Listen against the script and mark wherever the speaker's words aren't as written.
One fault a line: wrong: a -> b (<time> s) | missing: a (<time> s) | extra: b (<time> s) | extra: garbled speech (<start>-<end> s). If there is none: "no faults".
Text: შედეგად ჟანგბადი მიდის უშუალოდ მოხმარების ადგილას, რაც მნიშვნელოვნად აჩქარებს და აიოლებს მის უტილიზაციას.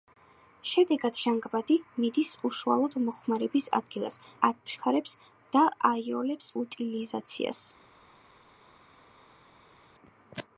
missing: რაც მნიშვნელოვნად (4.2 s)
missing: მის (6.5 s)